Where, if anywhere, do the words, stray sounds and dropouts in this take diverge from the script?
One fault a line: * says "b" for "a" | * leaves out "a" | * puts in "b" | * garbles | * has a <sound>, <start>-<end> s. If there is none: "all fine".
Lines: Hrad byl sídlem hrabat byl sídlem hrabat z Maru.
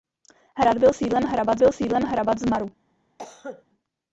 * has a cough, 3.2-3.6 s